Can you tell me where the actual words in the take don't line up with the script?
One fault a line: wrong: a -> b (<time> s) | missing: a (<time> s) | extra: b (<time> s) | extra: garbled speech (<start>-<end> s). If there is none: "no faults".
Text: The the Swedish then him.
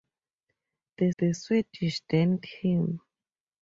no faults